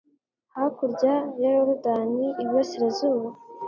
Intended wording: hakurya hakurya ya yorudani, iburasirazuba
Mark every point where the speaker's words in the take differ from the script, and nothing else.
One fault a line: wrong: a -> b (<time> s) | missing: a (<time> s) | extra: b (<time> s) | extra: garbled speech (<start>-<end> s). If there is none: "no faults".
missing: hakurya (1.1 s)